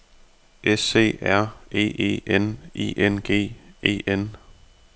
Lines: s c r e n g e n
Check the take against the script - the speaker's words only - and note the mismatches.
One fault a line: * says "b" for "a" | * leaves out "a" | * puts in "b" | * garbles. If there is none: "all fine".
* puts in "e n i"